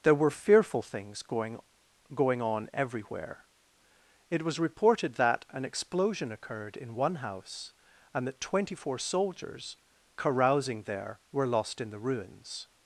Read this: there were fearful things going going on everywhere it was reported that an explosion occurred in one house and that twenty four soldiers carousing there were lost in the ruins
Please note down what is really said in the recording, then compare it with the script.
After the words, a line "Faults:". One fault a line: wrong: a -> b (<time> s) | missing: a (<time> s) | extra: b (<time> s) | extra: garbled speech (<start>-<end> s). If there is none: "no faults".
there were fearful things going going on everywhere it was reported that an explosion occurred in one house and that twenty four soldiers carousing there were lost in the ruins
Faults:
no faults